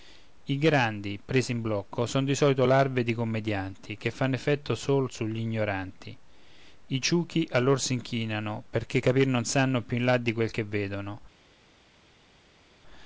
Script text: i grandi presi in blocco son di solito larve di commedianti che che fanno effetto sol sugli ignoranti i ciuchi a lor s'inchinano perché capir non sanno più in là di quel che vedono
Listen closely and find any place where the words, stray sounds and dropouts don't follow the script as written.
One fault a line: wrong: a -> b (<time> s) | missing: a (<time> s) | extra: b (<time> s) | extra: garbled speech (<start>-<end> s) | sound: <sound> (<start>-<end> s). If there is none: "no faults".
missing: che (4.1 s)